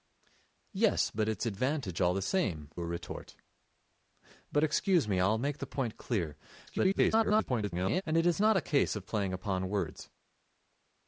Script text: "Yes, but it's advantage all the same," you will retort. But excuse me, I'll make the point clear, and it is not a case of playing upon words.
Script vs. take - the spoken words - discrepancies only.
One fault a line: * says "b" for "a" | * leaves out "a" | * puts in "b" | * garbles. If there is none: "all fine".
* leaves out "you"
* garbles